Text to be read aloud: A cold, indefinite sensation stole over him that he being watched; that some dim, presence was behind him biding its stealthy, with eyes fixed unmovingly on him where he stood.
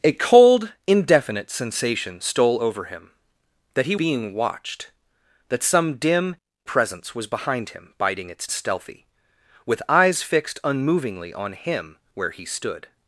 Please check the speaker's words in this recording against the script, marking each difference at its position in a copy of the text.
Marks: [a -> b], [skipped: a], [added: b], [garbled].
A cold, indefinite sensation stole over him that he being watched; that some dim, presence was behind him biding its stealthy, with eyes fixed unmovingly on him where he stood.